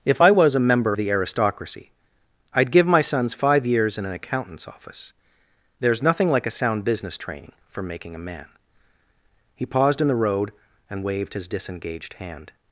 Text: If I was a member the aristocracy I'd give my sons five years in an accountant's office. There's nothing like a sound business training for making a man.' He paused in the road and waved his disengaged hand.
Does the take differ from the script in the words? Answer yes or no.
no